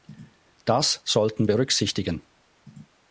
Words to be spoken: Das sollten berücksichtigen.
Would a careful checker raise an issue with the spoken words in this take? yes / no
no